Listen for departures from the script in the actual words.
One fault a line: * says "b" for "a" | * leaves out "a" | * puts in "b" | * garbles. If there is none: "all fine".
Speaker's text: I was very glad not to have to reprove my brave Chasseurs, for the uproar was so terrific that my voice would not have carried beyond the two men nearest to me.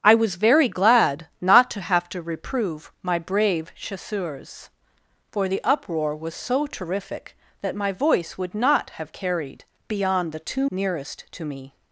* leaves out "men"